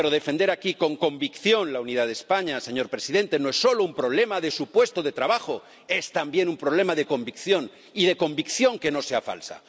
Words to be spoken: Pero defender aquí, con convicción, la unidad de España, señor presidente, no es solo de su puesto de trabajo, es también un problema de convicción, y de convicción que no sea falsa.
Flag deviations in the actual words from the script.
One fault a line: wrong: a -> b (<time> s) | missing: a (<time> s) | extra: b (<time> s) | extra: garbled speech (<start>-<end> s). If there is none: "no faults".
extra: un problema (3.8 s)